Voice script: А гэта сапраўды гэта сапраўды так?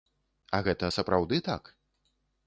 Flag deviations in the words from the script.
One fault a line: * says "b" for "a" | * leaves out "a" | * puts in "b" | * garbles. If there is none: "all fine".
* leaves out "гэта сапраўды"